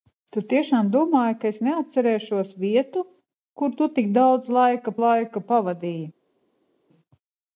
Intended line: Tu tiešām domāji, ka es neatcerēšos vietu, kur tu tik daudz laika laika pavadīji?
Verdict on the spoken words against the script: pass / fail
pass